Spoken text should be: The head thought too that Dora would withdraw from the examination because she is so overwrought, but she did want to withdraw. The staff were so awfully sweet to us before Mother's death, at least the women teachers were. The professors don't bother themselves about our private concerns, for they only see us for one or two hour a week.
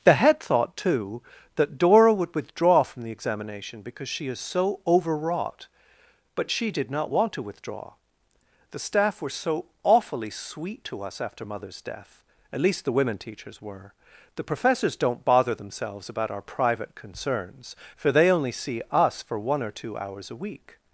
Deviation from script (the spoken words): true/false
true